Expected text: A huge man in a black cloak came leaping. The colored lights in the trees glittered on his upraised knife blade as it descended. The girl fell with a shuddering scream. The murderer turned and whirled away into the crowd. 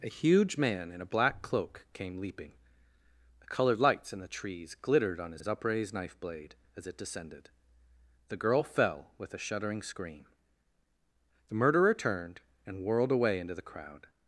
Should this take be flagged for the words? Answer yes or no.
yes